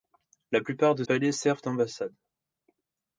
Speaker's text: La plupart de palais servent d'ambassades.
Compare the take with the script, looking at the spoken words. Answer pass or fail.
pass